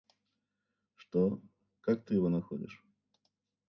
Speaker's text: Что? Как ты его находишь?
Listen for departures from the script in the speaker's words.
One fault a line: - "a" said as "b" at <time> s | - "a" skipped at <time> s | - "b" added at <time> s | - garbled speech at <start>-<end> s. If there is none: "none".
none